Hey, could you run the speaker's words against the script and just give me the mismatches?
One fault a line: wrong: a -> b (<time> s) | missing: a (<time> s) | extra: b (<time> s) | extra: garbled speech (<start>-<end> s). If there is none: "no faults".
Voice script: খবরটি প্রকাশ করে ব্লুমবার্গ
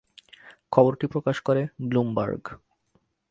no faults